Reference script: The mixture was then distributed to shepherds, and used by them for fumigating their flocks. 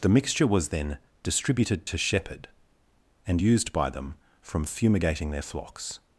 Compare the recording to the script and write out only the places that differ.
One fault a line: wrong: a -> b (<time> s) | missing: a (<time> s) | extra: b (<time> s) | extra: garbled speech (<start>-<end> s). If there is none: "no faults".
wrong: shepherds -> shepherd (2.0 s)
wrong: for -> from (4.4 s)